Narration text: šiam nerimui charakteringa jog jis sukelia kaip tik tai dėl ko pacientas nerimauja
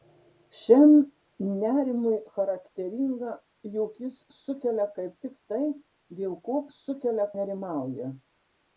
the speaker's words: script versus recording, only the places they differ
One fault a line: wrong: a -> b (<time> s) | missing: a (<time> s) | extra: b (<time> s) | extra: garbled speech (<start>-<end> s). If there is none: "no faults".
wrong: pacientas -> sukelia (6.8 s)